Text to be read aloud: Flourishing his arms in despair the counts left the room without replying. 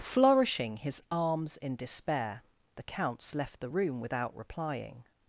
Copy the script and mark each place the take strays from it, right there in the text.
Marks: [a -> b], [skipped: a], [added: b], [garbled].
Flourishing his arms in despair the counts left the room without replying.